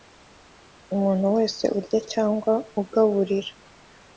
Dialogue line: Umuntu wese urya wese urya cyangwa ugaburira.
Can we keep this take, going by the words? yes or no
no